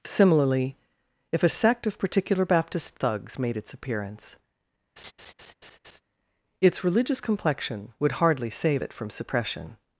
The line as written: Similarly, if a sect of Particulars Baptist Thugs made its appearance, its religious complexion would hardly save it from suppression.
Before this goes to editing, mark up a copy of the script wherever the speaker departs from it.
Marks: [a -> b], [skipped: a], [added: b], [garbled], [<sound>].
Similarly, if a sect of [Particulars -> Particular] Baptist Thugs made its appearance, [laugh] its religious complexion would hardly save it from suppression.